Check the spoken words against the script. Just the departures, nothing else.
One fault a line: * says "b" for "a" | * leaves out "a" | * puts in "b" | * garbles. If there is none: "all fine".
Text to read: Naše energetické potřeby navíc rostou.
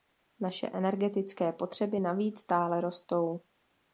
* puts in "stále"